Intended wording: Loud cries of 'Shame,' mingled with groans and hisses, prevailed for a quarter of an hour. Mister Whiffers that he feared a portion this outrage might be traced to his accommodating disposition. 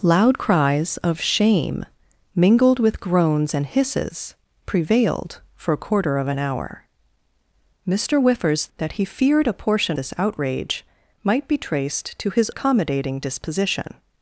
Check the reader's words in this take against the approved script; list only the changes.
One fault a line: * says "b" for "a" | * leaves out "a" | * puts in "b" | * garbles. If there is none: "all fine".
all fine